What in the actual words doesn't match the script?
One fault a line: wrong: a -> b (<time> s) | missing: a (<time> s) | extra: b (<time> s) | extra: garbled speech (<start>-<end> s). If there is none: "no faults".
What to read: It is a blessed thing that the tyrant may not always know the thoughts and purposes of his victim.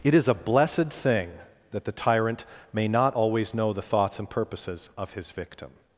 no faults